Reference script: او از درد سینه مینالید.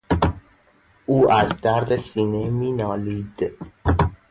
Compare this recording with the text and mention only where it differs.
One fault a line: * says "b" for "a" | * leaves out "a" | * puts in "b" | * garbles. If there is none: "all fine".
all fine